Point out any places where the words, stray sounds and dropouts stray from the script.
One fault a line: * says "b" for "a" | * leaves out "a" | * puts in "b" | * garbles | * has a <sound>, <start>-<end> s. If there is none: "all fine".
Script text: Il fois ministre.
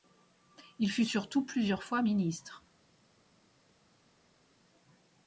* puts in "fut surtout plusieurs"